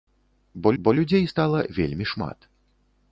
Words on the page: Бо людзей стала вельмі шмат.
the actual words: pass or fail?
fail